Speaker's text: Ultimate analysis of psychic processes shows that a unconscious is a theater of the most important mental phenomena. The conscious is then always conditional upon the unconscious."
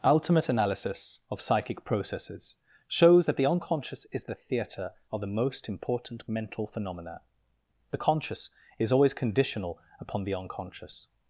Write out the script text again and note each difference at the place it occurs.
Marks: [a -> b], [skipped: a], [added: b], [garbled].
Ultimate analysis of psychic processes shows that [a -> the] unconscious is [a -> the] theater of the most important mental phenomena. The conscious is [skipped: then] always conditional upon the unconscious."